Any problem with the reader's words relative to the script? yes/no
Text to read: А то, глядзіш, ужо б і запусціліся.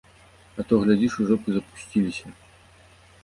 no